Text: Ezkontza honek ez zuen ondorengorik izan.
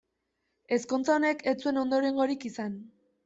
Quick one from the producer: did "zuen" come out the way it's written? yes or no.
yes